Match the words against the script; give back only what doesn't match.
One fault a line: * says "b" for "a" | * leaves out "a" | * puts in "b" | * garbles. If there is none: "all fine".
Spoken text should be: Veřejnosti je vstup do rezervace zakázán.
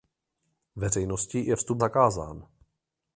* leaves out "do rezervace"